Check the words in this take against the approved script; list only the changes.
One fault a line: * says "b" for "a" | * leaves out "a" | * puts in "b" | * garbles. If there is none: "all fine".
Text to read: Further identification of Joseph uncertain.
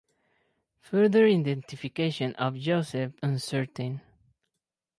all fine